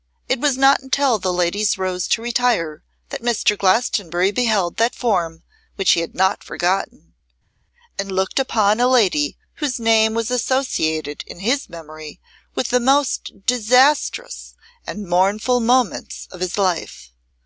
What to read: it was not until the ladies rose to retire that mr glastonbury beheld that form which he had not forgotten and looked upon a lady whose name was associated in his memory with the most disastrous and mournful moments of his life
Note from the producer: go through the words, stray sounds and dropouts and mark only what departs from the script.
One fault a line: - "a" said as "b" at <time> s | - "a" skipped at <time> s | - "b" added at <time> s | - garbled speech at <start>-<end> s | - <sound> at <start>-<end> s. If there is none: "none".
none